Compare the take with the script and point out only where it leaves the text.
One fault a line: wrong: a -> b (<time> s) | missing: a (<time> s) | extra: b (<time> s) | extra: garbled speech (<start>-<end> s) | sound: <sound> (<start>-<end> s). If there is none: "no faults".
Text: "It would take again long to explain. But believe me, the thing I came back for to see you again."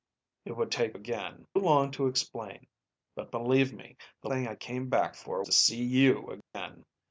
sound: dropout (6.4-6.5 s)